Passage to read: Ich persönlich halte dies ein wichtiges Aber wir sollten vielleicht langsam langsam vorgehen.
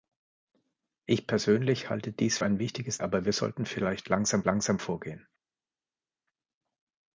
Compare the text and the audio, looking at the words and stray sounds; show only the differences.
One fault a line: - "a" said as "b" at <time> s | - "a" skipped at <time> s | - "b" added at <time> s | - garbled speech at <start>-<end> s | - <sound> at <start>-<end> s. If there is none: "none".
none